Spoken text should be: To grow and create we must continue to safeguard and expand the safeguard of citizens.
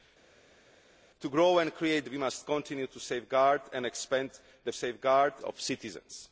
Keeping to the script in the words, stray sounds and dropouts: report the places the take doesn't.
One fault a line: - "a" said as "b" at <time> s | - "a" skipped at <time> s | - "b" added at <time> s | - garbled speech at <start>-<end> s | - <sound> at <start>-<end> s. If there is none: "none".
none